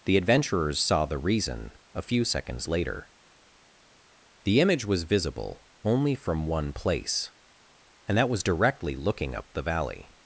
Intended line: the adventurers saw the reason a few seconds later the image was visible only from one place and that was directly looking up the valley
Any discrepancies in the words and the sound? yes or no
no